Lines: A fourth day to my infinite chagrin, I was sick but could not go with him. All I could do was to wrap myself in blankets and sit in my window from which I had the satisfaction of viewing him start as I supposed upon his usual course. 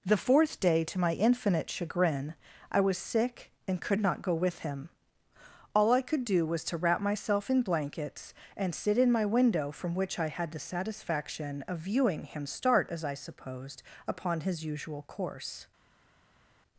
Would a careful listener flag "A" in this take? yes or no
yes